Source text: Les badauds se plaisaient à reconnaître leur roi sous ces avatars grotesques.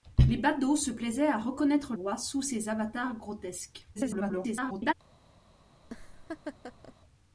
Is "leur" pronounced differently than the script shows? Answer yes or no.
yes